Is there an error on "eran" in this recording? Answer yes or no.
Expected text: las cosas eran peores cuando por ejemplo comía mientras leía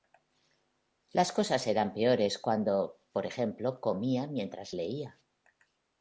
no